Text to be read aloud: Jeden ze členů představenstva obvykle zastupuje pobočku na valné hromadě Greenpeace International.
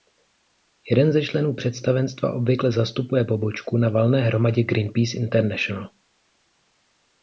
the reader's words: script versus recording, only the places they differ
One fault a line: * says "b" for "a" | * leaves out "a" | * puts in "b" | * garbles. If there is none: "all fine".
all fine